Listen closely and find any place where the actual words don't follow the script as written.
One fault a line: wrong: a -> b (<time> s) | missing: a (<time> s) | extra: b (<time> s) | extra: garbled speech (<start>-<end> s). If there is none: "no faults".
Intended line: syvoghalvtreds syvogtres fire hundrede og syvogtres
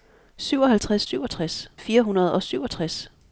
no faults